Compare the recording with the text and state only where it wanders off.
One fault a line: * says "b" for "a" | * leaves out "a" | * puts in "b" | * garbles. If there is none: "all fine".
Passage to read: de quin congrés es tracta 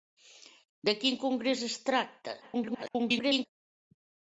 * garbles